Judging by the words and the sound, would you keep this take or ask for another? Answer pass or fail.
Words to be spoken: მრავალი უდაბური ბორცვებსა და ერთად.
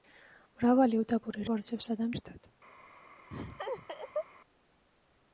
fail